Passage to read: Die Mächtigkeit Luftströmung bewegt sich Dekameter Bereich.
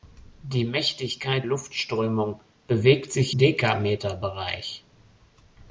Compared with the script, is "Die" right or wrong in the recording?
right